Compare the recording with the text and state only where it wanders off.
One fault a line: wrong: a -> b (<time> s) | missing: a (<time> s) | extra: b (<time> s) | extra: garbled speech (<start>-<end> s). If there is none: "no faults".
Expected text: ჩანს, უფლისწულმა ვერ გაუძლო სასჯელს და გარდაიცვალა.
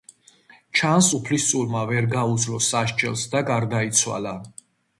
no faults